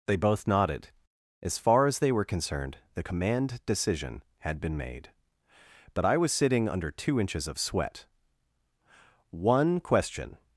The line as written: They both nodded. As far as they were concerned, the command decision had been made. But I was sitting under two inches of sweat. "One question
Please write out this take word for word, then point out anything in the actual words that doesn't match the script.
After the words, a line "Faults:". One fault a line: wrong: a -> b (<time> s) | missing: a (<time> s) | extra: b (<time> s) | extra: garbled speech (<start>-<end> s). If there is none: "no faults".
They both nodded. As far as they were concerned, the command decision had been made. But I was sitting under two inches of sweat. "One question
Faults:
no faults